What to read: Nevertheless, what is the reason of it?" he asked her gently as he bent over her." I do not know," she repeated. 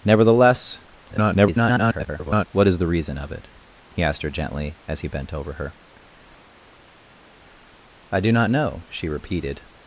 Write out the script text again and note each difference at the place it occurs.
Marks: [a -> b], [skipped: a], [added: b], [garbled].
Nevertheless, [garbled] what is the reason of it?" he asked her gently as he bent over her." I do not know," she repeated.